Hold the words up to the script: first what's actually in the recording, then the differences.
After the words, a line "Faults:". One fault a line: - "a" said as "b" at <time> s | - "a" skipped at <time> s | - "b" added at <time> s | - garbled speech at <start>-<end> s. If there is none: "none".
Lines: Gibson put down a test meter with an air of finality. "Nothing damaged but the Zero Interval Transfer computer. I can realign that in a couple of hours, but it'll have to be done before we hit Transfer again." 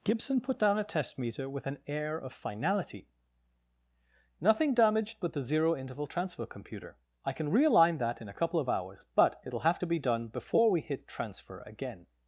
Gibson put down a test meter with an air of finality. "Nothing damaged but the Zero Interval Transfer computer. I can realign that in a couple of hours, but it'll have to be done before we hit Transfer again."
Faults:
none